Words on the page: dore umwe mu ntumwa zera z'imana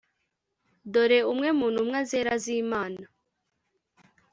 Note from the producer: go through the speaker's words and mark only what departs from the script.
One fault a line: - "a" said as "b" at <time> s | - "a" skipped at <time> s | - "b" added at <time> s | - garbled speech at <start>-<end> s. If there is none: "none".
none